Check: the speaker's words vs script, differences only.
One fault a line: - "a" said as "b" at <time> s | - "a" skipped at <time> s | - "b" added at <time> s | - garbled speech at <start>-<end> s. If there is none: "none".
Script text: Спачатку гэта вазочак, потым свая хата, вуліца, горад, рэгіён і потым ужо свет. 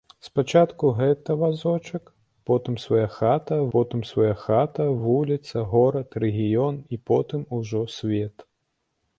- "потым свая хата" added at 3.8 s